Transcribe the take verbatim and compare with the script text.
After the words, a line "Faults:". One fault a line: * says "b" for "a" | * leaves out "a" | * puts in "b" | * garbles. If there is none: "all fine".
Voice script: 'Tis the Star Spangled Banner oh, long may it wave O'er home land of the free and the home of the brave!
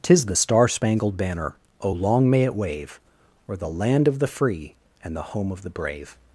'Tis the Star Spangled Banner oh, long may it wave O'er the land of the free and the home of the brave!
Faults:
* says "the" for "home"